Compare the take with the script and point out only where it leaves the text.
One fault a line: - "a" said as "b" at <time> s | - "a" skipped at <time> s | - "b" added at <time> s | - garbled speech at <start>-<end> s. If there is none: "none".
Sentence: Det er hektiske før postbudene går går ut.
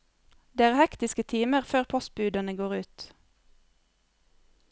- "timer" added at 1.3 s
- "går" skipped at 2.8 s